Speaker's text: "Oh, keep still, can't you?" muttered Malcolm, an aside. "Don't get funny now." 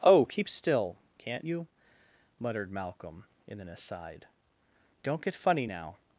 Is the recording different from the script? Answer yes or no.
yes